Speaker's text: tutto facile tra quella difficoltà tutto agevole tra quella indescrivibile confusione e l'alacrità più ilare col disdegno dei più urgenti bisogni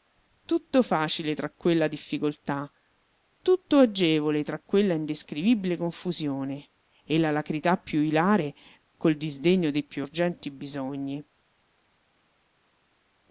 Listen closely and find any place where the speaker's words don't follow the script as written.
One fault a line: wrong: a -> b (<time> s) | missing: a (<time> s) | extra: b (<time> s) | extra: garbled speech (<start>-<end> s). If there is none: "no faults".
no faults